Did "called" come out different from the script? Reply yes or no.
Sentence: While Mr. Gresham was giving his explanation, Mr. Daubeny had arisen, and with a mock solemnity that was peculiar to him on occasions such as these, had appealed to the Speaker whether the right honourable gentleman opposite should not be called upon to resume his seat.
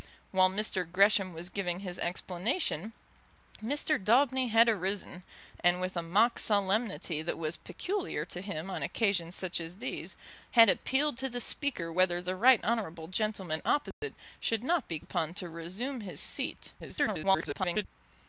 yes